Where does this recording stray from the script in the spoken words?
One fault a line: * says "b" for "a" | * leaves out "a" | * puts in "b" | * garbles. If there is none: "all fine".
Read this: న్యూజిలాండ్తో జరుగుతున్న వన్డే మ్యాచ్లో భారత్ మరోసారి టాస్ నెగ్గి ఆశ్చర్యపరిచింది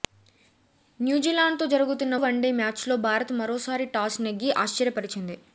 all fine